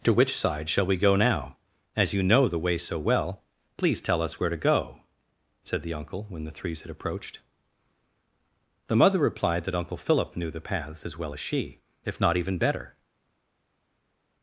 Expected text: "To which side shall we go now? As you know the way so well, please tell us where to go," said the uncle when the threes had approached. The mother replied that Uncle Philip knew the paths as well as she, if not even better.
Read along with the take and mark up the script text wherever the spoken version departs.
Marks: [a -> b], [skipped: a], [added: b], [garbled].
"To which side shall we go now? As you know the way so well, please tell us where to go," said the uncle when the threes had approached. The mother replied that Uncle Philip knew the paths as well as she, if not even better.